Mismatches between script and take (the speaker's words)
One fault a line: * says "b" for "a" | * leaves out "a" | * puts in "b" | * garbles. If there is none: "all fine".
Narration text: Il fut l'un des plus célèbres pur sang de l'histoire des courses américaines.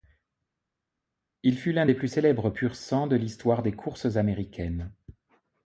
all fine